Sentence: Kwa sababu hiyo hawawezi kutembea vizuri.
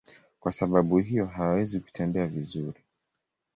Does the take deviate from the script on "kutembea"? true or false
false